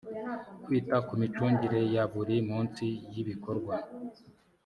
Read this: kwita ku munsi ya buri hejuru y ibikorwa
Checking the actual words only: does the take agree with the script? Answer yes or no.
no